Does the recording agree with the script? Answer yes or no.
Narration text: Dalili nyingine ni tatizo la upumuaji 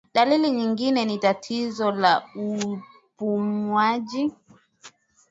yes